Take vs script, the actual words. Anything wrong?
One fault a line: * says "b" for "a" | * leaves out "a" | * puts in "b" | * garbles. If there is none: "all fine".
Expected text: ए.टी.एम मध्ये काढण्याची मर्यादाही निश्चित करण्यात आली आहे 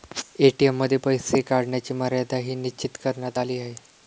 * puts in "पैसे"